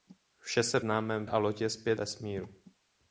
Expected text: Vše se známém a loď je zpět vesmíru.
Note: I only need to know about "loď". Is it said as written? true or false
true